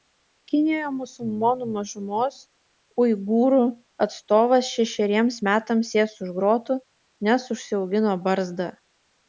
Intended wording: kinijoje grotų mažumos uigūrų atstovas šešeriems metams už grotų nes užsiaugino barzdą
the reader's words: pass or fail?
fail